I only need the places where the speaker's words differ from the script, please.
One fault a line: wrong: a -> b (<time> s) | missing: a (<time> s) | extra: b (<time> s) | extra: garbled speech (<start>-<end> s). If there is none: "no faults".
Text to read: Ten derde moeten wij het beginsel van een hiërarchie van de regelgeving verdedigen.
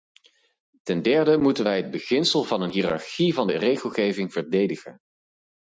no faults